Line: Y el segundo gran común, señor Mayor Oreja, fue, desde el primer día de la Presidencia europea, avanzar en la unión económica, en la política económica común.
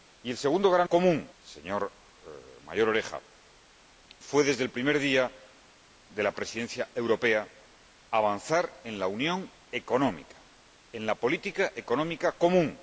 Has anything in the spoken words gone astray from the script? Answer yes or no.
no